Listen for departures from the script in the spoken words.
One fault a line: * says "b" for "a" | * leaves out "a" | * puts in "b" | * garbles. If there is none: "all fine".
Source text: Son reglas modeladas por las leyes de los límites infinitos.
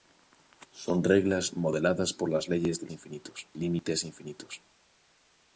* says "infinitos" for "los"